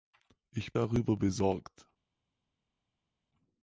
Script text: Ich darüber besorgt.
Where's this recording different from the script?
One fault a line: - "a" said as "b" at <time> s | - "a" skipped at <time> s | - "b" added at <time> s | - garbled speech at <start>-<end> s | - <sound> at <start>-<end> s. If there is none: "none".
none